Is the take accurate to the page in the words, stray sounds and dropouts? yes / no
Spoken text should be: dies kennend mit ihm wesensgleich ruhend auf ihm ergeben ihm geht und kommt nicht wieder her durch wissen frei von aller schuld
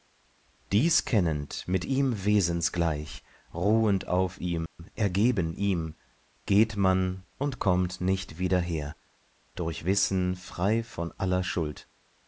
no